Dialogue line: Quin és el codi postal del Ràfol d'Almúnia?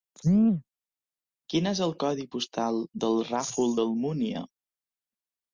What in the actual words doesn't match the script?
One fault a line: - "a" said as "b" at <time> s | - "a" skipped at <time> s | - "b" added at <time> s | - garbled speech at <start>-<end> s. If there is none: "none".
none